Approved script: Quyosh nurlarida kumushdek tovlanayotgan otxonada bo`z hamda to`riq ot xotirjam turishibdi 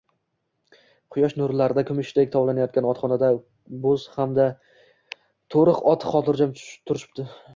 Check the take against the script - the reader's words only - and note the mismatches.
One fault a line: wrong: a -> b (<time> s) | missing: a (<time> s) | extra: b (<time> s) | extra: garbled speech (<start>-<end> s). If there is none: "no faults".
no faults